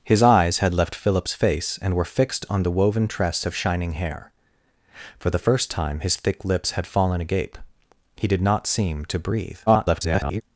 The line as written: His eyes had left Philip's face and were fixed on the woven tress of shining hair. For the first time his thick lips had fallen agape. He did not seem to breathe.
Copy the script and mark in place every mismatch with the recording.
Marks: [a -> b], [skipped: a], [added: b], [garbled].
His eyes had left Philip's face and were fixed on the woven tress of shining hair. For the first time his thick lips had fallen agape. He did not seem to breathe. [garbled]